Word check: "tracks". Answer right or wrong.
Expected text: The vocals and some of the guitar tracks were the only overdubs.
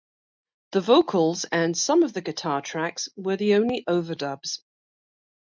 right